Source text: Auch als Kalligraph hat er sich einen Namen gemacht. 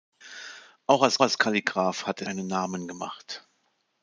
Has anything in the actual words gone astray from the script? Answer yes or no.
yes